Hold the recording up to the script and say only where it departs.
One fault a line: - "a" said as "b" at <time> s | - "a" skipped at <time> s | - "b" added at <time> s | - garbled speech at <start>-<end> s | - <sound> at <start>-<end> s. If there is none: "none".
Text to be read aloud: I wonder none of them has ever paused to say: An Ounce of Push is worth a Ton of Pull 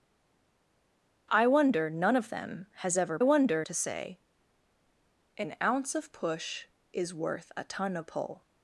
- "paused" said as "wonder" at 3.2 s